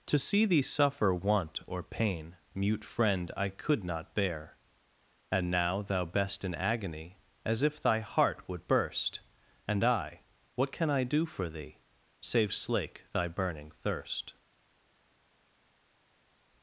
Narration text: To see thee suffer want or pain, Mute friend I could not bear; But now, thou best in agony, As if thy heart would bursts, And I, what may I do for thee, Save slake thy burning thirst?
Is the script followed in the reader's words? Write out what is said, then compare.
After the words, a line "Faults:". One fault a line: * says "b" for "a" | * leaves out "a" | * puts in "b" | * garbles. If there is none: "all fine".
To see thee suffer want or pain, Mute friend I could not bear; And now, thou best in agony, As if thy heart would burst, And I, what can I do for thee, Save slake thy burning thirst?
Faults:
* says "And" for "But"
* says "burst" for "bursts"
* says "can" for "may"